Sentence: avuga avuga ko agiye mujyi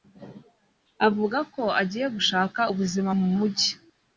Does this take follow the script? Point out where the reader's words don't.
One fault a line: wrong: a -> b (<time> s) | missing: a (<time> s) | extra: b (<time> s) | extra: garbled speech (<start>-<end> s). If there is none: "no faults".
missing: avuga (1.4 s)
extra: gushaka ubuzima mu (2.1 s)